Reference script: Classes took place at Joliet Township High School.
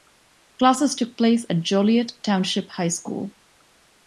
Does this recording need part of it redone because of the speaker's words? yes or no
no